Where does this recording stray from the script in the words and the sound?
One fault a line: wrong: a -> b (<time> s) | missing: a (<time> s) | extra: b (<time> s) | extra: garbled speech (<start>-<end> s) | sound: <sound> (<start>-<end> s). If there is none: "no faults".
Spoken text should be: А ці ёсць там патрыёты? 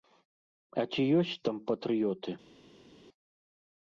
no faults